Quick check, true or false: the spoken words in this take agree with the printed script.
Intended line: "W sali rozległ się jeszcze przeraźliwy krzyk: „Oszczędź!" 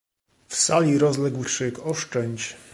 false